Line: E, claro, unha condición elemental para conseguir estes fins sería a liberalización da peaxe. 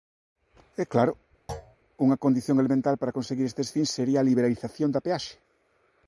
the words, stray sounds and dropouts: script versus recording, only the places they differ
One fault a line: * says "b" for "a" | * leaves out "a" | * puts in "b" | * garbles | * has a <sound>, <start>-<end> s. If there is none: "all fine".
* has a thud, 1.5-1.8 s